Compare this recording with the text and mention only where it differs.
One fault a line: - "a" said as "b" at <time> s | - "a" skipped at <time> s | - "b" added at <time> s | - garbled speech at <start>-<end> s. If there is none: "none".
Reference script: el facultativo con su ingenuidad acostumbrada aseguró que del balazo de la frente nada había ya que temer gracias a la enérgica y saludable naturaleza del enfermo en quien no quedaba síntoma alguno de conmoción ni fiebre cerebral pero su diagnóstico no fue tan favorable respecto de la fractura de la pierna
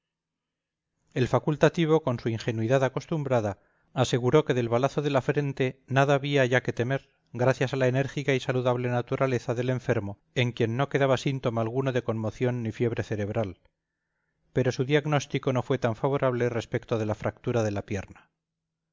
none